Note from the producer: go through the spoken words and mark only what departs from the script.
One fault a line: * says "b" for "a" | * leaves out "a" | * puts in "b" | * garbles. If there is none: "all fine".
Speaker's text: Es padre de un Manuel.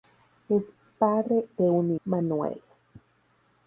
all fine